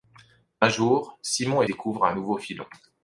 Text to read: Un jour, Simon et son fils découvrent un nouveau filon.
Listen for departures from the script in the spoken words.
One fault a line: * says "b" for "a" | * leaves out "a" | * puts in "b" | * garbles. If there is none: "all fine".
* leaves out "son fils"